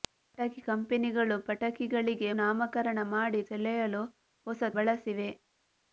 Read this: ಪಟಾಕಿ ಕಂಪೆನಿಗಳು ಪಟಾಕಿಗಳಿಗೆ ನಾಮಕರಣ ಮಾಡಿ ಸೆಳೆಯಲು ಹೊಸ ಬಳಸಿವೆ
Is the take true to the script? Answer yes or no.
yes